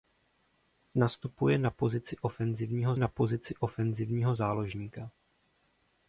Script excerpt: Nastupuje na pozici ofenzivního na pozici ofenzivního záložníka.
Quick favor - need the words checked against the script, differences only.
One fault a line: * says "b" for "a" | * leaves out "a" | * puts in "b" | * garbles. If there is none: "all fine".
all fine